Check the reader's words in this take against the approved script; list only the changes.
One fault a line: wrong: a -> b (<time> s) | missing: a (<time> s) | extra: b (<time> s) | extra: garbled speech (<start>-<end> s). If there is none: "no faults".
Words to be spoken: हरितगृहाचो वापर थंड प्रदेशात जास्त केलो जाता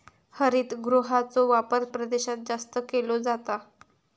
missing: थंड (1.9 s)